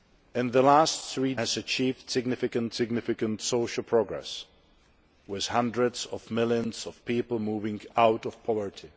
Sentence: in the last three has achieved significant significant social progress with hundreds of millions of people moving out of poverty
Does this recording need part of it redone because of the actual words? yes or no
no